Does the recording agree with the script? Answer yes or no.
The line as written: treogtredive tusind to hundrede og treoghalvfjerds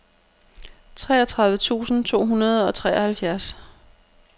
yes